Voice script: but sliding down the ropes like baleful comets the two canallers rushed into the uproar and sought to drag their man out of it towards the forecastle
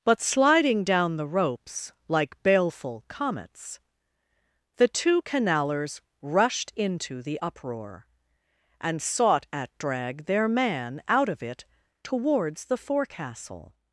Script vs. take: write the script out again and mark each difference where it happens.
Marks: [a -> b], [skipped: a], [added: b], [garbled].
but sliding down the ropes like baleful comets the two canallers rushed into the uproar and sought [to -> at] drag their man out of it towards the forecastle